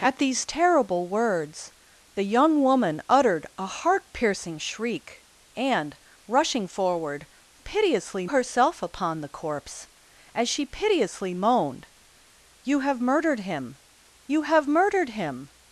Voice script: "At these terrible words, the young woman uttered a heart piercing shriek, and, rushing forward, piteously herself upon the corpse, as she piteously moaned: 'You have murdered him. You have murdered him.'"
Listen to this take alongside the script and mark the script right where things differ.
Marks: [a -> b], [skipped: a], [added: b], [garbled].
"At these terrible words, the young woman uttered a heart piercing shriek, and, rushing forward, piteously herself upon the corpse, as she piteously moaned: 'You have murdered him. You have murdered him.'"